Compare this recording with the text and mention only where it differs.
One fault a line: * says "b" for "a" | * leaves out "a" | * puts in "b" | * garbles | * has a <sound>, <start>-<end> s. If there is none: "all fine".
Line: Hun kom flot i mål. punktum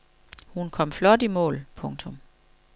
all fine